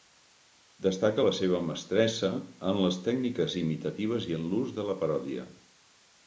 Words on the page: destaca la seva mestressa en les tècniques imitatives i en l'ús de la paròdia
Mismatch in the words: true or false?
false